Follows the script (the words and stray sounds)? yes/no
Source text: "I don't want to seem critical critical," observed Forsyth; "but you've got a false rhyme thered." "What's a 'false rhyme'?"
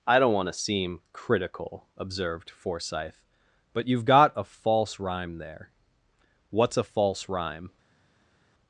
no